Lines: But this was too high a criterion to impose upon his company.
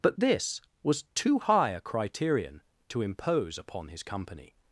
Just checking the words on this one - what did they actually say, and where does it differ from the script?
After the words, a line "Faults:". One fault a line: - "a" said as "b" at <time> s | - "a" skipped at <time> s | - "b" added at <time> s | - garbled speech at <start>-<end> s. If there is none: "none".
But this was too high a criterion to impose upon his company.
Faults:
none